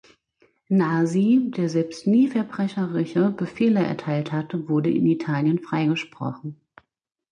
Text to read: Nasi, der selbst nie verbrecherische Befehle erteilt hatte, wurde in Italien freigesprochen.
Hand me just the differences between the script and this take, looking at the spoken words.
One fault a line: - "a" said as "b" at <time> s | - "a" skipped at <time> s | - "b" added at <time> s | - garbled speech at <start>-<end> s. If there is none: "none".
none